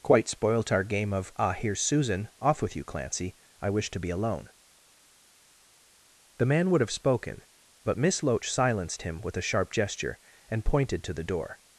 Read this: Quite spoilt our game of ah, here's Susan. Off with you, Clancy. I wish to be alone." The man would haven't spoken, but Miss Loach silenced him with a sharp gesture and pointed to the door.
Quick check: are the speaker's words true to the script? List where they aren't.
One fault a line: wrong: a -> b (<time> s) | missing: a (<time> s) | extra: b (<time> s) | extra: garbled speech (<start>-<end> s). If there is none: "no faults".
wrong: haven't -> have (6.8 s)